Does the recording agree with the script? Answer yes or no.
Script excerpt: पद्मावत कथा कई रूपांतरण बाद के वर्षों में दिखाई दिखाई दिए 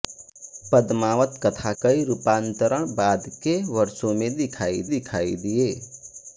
yes